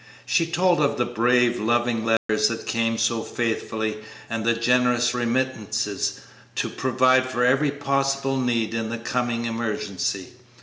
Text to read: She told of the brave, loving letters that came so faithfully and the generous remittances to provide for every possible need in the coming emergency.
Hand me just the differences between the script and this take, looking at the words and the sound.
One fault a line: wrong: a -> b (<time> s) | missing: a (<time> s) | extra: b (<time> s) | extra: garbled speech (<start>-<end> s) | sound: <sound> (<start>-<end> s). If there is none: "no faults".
sound: dropout (2.2-2.3 s)